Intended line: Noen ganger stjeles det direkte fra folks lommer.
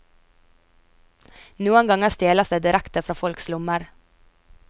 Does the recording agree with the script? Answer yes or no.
yes